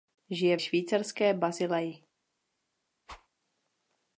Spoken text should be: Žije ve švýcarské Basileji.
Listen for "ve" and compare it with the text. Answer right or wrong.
wrong